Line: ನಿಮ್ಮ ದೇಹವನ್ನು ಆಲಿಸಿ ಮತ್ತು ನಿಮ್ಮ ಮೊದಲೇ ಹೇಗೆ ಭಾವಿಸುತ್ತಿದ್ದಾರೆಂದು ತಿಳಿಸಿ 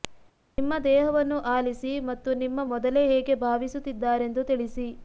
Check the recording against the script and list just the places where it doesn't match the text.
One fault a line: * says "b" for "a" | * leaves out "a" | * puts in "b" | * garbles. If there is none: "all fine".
all fine